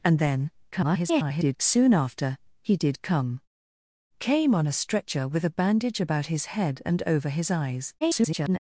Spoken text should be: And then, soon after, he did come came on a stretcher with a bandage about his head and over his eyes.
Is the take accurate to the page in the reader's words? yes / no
no